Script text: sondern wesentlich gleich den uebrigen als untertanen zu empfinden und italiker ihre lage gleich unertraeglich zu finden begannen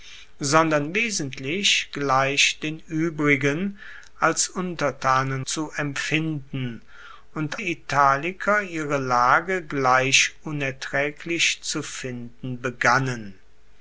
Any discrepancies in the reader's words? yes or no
no